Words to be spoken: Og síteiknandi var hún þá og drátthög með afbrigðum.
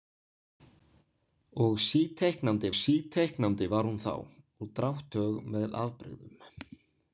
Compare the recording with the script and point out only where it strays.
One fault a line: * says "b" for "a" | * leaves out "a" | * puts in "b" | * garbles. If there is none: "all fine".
* puts in "síteiknandi"